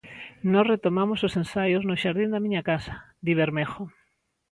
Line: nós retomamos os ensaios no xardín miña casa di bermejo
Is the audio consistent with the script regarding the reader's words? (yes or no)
no